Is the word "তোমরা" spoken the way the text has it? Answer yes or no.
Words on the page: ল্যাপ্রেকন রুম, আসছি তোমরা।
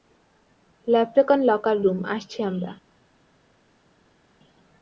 no